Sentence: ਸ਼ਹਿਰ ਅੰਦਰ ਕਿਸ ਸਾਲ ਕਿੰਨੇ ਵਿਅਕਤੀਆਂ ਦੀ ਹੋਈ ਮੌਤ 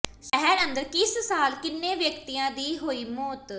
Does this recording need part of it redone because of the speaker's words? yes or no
no